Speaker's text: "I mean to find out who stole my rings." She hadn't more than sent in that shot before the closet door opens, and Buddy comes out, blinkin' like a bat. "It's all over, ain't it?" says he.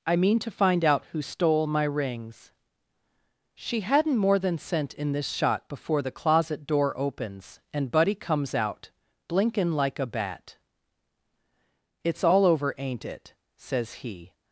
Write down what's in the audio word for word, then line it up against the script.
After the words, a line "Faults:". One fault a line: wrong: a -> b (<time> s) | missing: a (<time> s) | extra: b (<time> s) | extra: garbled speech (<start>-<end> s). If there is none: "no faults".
"I mean to find out who stole my rings." She hadn't more than sent in this shot before the closet door opens, and Buddy comes out, blinkin' like a bat. "It's all over, ain't it?" says he.
Faults:
wrong: that -> this (5.1 s)